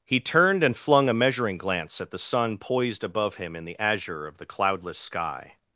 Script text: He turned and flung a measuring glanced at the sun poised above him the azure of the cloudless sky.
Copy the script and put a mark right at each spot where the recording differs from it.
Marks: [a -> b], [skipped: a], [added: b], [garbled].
He turned and flung a measuring [glanced -> glance] at the sun poised above him [added: in] the azure of the cloudless sky.